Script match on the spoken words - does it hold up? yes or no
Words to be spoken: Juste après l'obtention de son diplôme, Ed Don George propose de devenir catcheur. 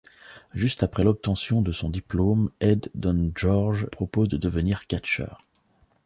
yes